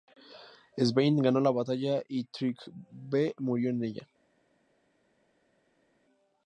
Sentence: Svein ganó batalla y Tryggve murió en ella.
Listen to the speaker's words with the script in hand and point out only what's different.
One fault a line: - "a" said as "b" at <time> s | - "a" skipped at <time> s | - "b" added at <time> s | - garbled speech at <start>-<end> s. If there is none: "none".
- "la" added at 1.4 s